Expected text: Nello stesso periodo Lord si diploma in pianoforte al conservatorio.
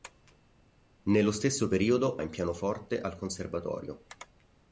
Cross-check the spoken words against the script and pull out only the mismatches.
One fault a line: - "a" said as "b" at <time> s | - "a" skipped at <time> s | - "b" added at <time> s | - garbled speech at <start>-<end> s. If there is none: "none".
- "Lord si diploma" skipped at 2.2 s